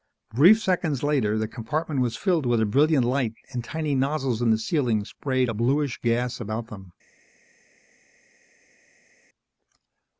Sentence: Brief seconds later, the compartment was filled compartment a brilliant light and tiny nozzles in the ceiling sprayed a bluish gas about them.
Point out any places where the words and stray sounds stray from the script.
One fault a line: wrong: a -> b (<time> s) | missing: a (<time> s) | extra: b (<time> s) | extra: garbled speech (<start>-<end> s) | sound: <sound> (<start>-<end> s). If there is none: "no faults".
wrong: compartment -> with (2.5 s)